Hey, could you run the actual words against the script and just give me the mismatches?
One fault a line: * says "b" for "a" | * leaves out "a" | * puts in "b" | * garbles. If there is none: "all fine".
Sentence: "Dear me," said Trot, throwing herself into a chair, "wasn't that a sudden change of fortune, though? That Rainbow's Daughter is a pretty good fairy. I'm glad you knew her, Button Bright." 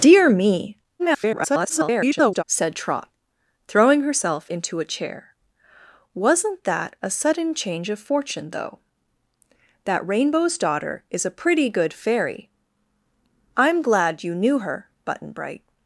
* garbles